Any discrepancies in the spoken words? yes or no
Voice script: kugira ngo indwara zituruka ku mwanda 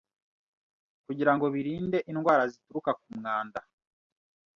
yes